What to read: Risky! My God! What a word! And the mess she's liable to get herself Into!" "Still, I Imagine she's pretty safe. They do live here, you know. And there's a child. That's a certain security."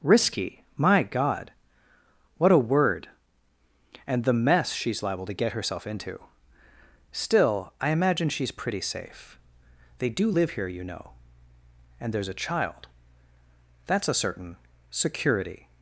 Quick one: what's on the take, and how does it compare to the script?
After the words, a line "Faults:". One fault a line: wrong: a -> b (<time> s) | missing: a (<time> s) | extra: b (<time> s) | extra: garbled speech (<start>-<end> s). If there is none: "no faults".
Risky! My God! What a word! And the mess she's liable to get herself Into!" "Still, I Imagine she's pretty safe. They do live here, you know. And there's a child. That's a certain security."
Faults:
no faults